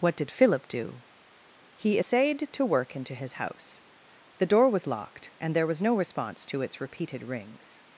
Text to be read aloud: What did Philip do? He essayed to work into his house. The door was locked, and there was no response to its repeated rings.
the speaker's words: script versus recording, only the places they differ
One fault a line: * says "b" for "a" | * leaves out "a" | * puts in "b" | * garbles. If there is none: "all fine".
all fine